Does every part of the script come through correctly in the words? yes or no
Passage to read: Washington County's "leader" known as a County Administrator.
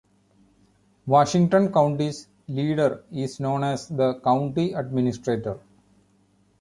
no